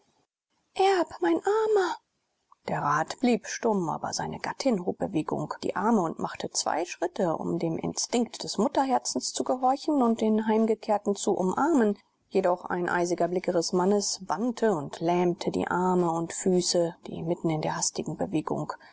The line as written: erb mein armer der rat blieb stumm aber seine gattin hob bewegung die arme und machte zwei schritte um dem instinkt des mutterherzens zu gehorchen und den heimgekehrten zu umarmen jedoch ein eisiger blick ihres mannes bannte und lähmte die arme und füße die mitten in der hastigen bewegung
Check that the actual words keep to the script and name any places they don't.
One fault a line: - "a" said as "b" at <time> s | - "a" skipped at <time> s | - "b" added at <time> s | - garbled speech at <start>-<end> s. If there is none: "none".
none